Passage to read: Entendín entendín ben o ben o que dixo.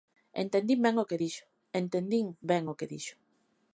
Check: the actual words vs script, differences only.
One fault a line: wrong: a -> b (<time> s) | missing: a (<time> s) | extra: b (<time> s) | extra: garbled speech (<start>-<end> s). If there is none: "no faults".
missing: entendín (0.8 s)
extra: que dixo entendín (1.1 s)